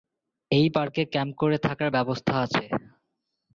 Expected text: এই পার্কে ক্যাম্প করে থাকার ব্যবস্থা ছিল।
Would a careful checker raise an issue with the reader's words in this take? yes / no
yes